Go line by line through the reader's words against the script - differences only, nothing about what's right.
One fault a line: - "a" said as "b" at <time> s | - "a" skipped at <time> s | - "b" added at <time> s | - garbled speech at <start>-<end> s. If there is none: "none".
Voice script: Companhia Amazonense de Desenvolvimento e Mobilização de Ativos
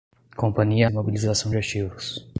- "Amazonense de Desenvolvimento" skipped at 0.9 s